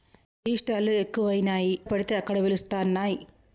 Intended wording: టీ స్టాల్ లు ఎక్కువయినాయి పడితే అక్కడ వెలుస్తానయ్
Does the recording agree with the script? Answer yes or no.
yes